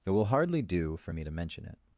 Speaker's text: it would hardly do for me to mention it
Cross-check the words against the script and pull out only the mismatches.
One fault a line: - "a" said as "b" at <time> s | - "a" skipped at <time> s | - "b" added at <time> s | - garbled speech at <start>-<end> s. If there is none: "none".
- "would" said as "will" at 0.1 s